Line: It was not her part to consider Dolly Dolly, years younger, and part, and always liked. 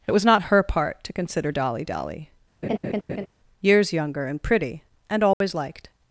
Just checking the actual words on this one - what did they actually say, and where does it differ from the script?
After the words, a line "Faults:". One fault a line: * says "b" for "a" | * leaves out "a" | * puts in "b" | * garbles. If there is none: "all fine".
It was not her part to consider Dolly Dolly, years younger, and pretty, and always liked.
Faults:
* says "pretty" for "part"